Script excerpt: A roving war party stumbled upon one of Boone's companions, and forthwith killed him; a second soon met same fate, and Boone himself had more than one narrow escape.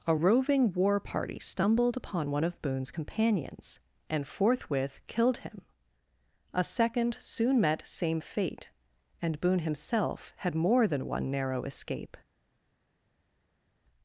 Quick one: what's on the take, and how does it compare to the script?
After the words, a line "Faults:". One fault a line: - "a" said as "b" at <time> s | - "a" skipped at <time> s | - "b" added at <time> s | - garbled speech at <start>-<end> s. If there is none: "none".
A roving war party stumbled upon one of Boone's companions, and forthwith killed him; a second soon met same fate, and Boone himself had more than one narrow escape.
Faults:
none